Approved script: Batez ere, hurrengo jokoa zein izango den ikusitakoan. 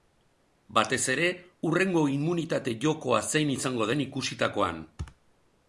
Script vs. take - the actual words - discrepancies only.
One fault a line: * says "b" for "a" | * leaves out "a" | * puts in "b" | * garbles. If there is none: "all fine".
* puts in "immunitate"